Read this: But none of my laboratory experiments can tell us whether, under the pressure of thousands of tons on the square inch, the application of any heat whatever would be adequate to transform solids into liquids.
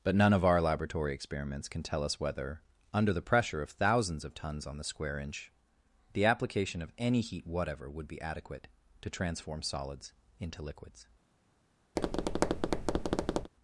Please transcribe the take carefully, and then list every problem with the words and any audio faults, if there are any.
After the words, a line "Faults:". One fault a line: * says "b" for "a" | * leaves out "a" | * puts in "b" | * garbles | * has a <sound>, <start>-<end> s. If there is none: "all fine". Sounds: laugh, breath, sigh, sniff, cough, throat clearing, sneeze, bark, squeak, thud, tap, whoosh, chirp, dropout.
But none of our laboratory experiments can tell us whether, under the pressure of thousands of tons on the square inch, the application of any heat whatever would be adequate to transform solids into liquids.
Faults:
* says "our" for "my"
* has a tap, 12.0-13.5 s